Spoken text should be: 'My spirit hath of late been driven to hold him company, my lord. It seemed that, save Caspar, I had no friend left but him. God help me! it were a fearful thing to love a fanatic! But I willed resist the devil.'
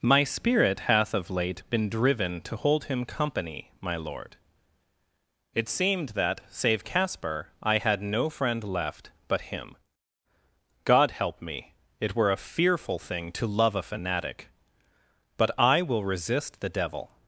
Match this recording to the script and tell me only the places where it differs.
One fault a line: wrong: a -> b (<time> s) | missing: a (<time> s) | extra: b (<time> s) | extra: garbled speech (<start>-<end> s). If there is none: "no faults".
wrong: willed -> will (15.8 s)